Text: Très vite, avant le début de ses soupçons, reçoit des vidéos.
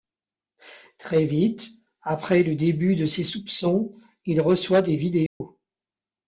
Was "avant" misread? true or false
true